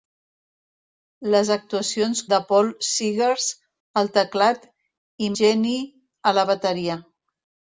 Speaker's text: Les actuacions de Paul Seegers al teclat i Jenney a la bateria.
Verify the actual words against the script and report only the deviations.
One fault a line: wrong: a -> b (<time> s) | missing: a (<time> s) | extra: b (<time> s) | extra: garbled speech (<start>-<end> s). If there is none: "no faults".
no faults